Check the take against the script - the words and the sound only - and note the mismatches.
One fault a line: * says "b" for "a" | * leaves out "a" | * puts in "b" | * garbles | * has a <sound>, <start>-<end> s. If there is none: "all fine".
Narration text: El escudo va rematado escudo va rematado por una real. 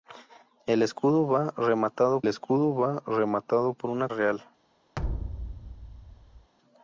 * has a thud, 5.0-6.5 s